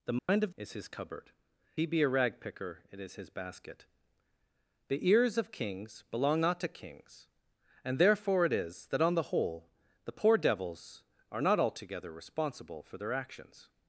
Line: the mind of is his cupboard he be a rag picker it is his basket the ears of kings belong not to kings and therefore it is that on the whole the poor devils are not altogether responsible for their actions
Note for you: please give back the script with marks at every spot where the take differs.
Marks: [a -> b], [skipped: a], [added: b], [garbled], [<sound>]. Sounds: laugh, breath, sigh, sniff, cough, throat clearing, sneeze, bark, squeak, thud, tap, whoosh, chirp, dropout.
the mind [dropout] of is his cupboard he be a rag picker it is his basket the ears of kings belong not to kings and therefore it is that on the whole the poor devils are not altogether responsible for their actions